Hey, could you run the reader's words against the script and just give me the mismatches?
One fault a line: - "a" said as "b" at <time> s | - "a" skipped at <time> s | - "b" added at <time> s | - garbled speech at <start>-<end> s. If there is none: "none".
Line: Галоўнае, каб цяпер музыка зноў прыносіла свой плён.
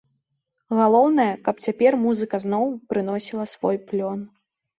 none